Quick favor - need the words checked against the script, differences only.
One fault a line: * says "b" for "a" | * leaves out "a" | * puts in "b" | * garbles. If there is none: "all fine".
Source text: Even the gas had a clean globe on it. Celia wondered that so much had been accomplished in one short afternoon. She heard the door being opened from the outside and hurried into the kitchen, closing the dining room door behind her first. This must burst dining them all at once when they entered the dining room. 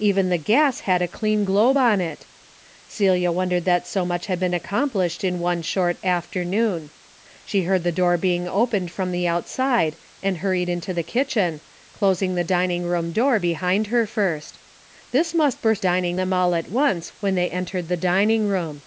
all fine